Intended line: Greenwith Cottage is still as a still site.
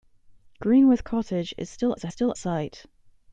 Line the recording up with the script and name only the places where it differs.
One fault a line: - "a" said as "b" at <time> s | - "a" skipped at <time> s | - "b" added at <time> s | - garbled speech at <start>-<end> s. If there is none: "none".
none